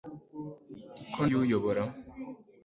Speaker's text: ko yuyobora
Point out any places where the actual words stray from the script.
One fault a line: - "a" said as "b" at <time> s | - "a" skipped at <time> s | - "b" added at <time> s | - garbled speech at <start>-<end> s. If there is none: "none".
none